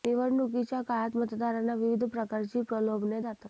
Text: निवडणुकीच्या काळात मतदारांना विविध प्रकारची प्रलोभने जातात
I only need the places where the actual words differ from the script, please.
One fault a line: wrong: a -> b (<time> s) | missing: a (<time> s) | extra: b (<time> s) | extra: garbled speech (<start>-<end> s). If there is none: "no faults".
no faults